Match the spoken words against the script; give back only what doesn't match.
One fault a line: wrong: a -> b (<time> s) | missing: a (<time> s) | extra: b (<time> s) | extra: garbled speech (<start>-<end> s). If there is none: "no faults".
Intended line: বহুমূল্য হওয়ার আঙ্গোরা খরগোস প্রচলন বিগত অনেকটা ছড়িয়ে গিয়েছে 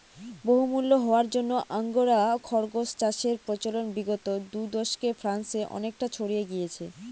extra: জন্য (1.3 s)
extra: চাষের (3.0 s)
extra: দু দশকে ফ্রান্সে (4.5 s)